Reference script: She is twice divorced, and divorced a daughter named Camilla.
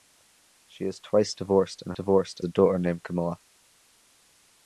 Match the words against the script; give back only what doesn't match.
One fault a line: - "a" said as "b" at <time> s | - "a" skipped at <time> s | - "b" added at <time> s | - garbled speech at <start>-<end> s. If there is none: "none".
none